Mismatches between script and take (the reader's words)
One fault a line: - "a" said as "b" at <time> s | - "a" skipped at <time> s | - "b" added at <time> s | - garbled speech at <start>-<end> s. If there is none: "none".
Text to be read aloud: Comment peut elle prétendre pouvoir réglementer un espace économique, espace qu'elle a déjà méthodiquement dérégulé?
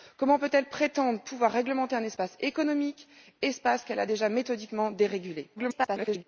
- garbled speech at 5.6-6.2 s